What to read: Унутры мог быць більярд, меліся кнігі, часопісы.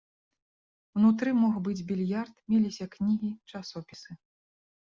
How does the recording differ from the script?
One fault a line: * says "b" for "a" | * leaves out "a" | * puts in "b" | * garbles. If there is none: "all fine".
all fine